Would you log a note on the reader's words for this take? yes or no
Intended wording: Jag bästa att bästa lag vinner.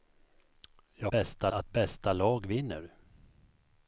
no